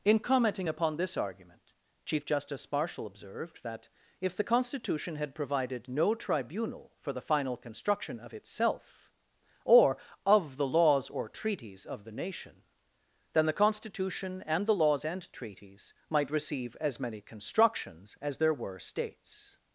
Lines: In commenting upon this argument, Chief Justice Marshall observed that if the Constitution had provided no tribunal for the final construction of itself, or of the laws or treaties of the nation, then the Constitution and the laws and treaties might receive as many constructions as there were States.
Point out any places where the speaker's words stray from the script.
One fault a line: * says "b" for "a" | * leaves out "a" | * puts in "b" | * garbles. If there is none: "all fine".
all fine